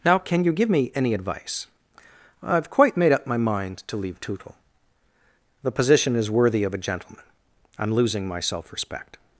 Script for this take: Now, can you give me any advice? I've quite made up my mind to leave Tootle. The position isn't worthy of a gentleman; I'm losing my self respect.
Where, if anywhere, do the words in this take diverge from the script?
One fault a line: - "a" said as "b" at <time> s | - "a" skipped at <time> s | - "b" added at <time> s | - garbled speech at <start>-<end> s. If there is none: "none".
- "isn't" said as "is" at 6.2 s